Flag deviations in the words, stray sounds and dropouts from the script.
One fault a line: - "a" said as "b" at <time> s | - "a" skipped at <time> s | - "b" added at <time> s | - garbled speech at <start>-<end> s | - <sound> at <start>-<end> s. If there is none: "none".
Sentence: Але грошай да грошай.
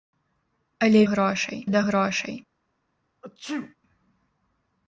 - sneeze at 3.2-3.8 s